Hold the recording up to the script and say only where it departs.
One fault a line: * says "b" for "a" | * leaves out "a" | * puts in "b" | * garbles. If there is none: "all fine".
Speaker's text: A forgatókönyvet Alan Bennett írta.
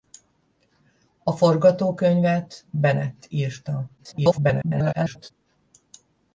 * leaves out "Alan"
* garbles